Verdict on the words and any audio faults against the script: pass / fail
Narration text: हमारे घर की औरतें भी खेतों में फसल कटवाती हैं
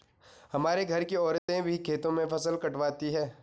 fail